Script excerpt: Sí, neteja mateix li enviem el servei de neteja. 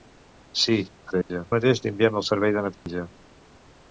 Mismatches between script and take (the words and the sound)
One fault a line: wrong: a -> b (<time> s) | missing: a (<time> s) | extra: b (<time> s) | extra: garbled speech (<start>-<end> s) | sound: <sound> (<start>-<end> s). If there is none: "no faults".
sound: dropout (1.2-1.3 s)
sound: dropout (2.8-2.9 s)